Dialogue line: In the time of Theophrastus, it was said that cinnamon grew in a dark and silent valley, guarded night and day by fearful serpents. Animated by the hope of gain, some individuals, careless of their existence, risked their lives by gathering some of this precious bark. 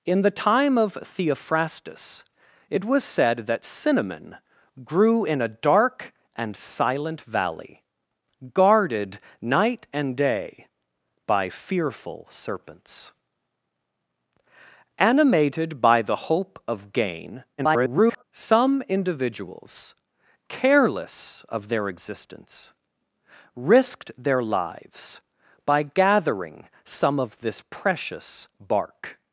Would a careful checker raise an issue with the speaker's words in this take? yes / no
yes